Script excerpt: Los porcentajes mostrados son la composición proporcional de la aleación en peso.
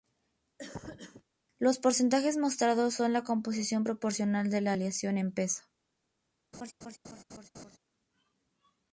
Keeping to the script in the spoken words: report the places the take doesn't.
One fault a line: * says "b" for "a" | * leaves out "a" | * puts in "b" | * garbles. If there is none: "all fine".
all fine